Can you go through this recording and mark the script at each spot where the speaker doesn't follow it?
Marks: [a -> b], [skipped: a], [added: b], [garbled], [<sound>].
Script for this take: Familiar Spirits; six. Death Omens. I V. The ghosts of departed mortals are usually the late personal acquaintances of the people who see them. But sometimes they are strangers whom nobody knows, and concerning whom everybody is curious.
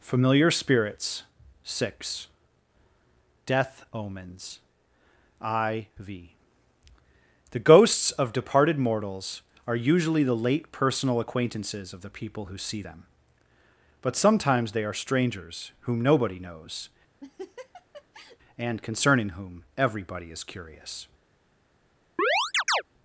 Familiar Spirits; six. Death Omens. I V. The ghosts of departed mortals are usually the late personal acquaintances of the people who see them. But sometimes they are strangers whom nobody knows, [laugh] and concerning whom everybody is curious. [chirp]